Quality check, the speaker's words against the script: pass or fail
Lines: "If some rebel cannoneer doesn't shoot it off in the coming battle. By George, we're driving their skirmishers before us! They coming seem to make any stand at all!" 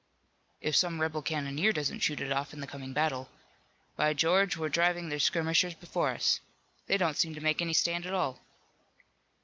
fail